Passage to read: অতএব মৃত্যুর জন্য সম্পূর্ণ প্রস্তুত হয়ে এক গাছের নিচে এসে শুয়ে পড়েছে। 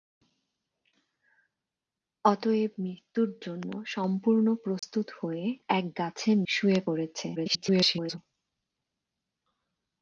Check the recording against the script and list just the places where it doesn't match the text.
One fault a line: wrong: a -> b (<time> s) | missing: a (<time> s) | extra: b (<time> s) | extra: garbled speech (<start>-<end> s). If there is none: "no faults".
missing: নিচে এসে (6.4 s)
extra: garbled speech (7.4-8.2 s)